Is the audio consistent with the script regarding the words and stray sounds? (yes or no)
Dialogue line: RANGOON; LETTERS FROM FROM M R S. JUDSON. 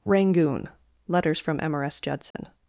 no